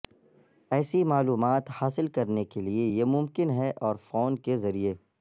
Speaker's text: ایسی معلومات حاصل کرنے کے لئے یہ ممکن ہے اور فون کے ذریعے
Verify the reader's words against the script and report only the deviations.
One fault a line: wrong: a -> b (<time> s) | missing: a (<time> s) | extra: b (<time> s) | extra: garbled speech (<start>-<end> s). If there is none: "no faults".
no faults